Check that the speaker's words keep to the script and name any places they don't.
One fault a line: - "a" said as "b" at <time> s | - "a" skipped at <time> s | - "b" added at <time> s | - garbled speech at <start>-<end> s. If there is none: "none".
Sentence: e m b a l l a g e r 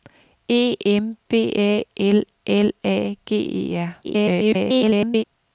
- garbled speech at 4.0-5.2 s